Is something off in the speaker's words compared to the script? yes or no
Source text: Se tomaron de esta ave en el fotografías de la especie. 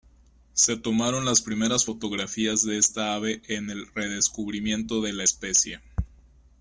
yes